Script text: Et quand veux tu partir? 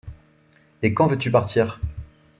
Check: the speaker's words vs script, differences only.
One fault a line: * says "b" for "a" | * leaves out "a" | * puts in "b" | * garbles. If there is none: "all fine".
all fine